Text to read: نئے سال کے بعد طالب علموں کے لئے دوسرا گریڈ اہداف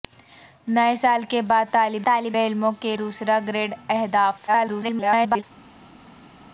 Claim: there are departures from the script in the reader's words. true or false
true